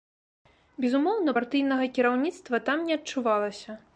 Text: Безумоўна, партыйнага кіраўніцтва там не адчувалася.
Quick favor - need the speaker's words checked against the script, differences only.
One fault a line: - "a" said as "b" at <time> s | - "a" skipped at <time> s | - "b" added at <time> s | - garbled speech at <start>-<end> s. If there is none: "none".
none